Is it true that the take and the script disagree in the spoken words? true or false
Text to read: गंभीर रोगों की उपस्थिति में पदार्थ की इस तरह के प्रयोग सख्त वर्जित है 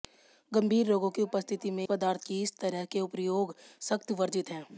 false